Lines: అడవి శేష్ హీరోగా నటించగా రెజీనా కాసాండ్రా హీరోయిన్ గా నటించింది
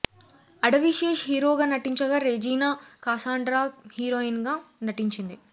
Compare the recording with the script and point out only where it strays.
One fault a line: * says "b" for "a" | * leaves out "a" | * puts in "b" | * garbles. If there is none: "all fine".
all fine